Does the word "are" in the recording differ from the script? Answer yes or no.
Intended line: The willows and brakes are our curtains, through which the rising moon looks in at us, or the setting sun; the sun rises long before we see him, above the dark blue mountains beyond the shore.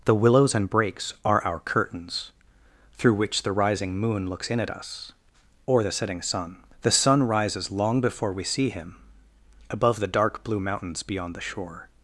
no